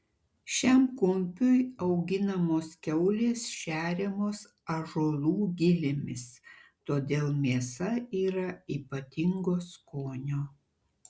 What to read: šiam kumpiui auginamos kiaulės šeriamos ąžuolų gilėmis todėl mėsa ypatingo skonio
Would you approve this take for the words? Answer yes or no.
no